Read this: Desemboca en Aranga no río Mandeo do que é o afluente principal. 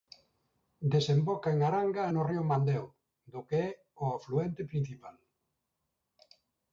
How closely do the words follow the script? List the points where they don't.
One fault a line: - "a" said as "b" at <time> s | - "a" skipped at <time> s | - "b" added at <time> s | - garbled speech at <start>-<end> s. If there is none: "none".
none